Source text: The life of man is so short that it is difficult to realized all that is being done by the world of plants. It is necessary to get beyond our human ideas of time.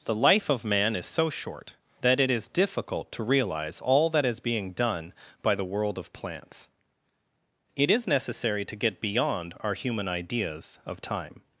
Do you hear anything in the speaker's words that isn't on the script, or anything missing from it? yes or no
yes